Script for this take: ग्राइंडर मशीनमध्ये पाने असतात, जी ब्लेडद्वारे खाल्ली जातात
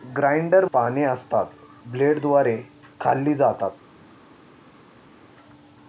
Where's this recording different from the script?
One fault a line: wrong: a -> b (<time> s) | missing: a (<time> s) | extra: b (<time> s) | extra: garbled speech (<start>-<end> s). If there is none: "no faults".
missing: मशीनमध्ये (0.7 s)
missing: जी (1.5 s)